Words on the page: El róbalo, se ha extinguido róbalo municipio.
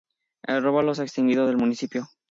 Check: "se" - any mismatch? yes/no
no